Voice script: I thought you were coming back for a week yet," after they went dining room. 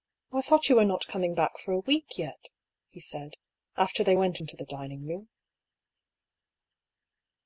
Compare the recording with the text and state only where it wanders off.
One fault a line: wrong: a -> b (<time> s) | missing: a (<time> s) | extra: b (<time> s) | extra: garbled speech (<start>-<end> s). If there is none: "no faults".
extra: not (0.8 s)
extra: he said (2.9 s)
extra: into the (4.4 s)